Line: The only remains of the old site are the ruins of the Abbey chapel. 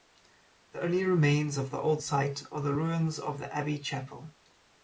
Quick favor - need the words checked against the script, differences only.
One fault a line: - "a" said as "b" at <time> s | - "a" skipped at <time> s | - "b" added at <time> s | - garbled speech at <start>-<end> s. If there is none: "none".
none